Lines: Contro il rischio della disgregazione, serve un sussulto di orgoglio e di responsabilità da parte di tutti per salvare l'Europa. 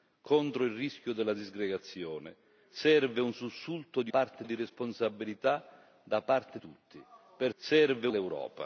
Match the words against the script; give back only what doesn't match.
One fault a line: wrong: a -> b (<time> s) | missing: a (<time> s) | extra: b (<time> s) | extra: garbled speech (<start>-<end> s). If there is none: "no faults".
wrong: orgoglio -> parte (4.1 s)
missing: di (6.6 s)
wrong: salvare -> serve (7.6 s)